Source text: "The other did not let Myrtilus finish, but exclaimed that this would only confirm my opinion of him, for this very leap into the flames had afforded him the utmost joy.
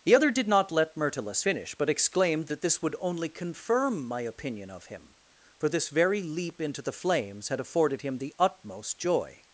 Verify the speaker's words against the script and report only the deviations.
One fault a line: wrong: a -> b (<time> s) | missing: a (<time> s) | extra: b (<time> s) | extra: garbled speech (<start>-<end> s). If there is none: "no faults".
no faults